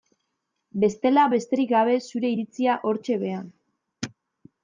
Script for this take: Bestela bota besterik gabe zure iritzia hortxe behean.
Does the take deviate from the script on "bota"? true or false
true